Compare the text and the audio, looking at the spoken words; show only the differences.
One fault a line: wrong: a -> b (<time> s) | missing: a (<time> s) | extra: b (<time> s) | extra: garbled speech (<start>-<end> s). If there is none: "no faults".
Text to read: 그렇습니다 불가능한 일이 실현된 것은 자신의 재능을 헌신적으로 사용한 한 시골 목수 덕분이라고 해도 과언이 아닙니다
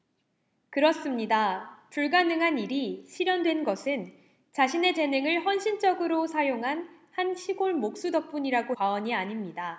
missing: 해도 (8.8 s)